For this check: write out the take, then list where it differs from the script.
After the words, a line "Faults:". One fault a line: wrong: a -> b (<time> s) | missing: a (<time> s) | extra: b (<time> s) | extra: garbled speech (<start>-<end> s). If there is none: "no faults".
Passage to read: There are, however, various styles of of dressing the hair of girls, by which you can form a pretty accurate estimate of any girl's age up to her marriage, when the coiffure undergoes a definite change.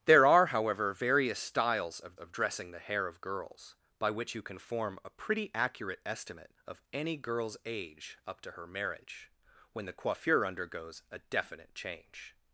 There are, however, various styles of of dressing the hair of girls, by which you can form a pretty accurate estimate of any girl's age up to her marriage, when the coiffure undergoes a definite change.
Faults:
no faults